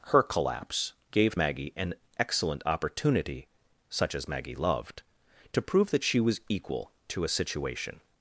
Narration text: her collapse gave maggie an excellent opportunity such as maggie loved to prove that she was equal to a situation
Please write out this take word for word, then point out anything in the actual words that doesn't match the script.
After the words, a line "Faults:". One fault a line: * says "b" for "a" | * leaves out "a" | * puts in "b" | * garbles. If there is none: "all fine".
her collapse gave maggie an excellent opportunity such as maggie loved to prove that she was equal to a situation
Faults:
all fine